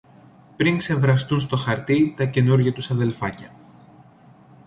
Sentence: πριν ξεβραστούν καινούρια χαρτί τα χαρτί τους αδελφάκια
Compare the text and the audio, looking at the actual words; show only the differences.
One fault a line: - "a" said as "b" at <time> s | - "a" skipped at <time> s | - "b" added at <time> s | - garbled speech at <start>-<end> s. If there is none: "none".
- "καινούρια" said as "στο" at 1.4 s
- "χαρτί" said as "καινούρια" at 2.2 s